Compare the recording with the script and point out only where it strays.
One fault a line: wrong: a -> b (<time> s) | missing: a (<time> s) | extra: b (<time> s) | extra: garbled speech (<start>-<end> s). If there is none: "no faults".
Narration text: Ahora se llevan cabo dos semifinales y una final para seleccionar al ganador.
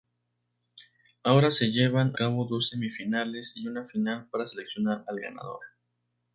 no faults